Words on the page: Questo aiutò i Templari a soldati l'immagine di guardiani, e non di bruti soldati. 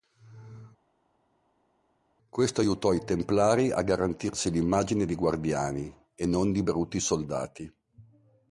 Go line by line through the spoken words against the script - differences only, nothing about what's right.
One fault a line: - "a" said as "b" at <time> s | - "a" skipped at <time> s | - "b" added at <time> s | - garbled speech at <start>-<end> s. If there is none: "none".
- "soldati" said as "garantirsi" at 3.8 s